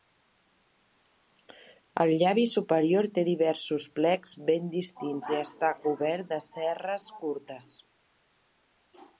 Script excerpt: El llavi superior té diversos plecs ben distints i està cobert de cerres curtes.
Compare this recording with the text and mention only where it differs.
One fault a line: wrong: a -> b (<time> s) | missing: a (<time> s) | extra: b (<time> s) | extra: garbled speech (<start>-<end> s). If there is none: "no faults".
no faults